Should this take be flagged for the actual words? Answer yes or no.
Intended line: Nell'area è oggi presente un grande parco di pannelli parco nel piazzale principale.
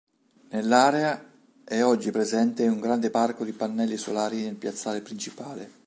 yes